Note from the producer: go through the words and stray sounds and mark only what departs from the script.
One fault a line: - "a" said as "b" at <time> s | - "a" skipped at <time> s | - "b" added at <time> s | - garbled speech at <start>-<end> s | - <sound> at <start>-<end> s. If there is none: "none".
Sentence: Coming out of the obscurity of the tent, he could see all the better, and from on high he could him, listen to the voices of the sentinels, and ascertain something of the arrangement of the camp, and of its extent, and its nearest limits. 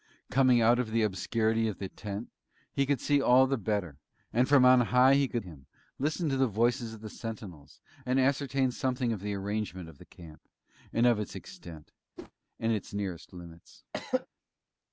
- whoosh at 12.2-12.3 s
- throat clearing at 13.9-14.3 s